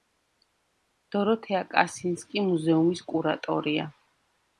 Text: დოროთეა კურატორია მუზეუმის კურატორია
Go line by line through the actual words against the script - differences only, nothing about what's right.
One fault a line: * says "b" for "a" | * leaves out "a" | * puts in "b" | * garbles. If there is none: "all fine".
* says "კასინსკი" for "კურატორია"